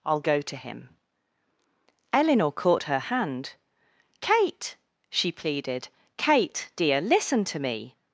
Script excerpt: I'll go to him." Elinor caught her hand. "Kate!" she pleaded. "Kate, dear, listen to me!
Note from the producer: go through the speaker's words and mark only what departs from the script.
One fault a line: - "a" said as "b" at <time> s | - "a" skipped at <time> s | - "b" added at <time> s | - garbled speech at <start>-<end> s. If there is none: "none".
none